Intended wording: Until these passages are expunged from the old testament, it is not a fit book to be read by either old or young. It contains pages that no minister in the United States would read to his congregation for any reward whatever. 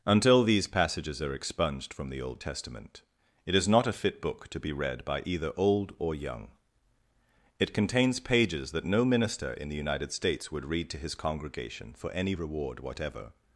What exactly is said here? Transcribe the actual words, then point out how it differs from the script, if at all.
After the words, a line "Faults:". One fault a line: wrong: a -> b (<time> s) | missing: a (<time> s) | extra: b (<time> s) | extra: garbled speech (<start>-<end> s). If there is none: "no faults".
Until these passages are expunged from the old testament, it is not a fit book to be read by either old or young. It contains pages that no minister in the United States would read to his congregation for any reward whatever.
Faults:
no faults